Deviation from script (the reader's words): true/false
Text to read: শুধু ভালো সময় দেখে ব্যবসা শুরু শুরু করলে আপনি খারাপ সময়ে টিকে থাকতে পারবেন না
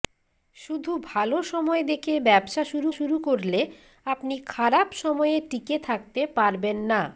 false